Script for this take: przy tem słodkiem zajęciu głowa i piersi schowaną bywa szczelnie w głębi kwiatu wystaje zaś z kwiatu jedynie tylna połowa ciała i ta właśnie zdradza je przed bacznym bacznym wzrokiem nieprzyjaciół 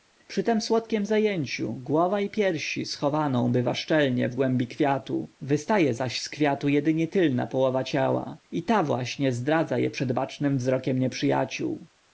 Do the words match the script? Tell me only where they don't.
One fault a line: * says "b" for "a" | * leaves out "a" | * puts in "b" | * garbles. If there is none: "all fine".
* leaves out "bacznym"